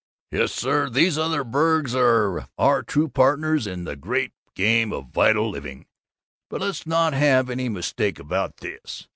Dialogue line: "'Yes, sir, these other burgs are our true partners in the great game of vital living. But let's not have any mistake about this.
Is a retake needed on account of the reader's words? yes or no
no